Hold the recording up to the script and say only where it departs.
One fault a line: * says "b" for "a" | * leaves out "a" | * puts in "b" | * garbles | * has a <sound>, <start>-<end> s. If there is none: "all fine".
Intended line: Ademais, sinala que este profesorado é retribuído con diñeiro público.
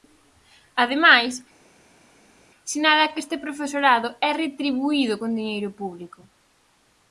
all fine